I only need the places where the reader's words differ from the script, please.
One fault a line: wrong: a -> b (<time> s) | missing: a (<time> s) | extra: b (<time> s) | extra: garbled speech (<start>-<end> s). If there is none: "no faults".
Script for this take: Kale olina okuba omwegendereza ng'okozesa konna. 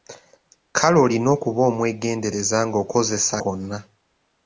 no faults